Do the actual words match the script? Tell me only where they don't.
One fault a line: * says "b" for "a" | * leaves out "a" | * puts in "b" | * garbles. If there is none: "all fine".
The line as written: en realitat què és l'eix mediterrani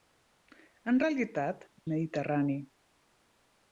* leaves out "què és l'eix"